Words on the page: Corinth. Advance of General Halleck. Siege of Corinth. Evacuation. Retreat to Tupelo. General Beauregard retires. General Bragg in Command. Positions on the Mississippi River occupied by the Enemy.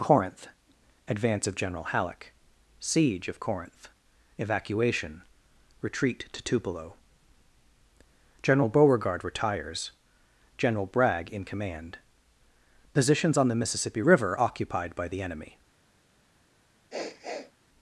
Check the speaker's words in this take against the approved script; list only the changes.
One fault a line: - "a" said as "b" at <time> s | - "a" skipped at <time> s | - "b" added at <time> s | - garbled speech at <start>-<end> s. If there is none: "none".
none